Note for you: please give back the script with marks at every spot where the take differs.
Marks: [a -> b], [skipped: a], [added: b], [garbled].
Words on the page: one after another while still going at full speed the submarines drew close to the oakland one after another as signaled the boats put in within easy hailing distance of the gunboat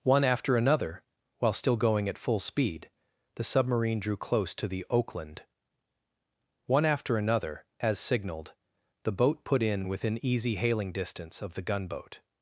one after another while still going at full speed the [submarines -> submarine] drew close to the oakland one after another as signaled the [boats -> boat] put in within easy hailing distance of the gunboat